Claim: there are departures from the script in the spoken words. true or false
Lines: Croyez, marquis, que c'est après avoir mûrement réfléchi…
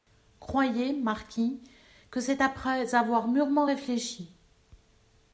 false